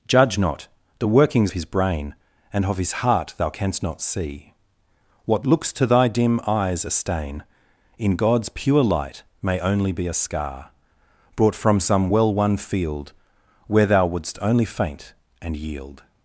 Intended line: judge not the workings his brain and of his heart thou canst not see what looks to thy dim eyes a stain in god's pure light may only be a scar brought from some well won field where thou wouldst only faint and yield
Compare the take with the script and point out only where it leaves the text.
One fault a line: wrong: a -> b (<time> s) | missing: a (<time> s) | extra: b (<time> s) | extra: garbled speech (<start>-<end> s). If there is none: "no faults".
no faults